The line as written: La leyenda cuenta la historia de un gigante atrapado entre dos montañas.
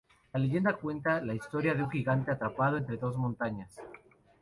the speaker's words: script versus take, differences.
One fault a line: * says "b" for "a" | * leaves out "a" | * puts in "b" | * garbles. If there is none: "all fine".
all fine